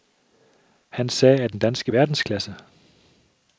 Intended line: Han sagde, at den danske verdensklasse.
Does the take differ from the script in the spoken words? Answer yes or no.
no